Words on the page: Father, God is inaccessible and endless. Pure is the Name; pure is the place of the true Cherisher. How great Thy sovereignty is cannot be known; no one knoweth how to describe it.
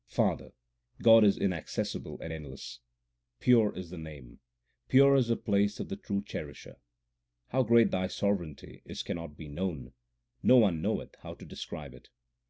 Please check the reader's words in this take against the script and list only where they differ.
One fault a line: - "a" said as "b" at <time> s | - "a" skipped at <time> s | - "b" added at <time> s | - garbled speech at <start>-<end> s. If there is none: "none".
none